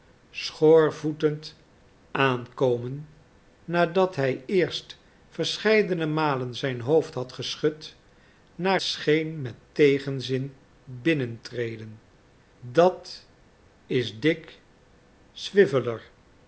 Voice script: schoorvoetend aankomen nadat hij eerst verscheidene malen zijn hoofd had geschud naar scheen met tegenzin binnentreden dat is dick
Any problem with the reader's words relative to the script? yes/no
no